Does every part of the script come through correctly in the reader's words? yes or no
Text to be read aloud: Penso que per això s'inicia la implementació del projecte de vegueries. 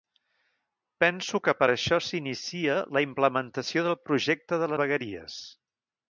yes